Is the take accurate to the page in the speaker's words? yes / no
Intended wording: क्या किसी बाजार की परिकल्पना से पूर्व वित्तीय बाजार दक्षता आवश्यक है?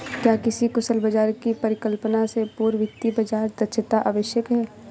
no